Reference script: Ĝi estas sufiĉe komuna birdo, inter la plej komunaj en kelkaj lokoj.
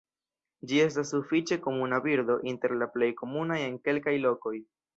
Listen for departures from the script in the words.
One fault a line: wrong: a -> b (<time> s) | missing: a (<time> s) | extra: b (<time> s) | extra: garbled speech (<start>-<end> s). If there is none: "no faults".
no faults